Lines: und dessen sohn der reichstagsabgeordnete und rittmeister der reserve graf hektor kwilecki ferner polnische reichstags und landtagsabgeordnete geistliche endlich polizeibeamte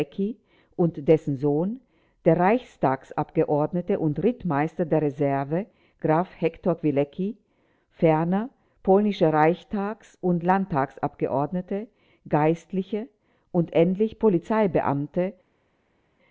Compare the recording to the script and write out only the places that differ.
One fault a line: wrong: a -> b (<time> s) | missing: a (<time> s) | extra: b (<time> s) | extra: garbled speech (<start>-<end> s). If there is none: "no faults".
extra: und (13.5 s)